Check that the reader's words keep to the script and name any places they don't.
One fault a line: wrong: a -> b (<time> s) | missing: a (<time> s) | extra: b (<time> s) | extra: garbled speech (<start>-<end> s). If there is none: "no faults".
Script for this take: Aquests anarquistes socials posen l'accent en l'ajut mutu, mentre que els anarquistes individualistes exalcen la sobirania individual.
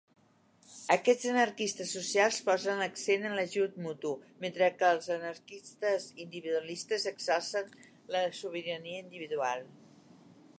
no faults